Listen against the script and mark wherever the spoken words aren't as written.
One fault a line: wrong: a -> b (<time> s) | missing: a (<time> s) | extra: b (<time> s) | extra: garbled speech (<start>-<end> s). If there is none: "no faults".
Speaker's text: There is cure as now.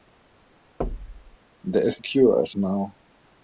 no faults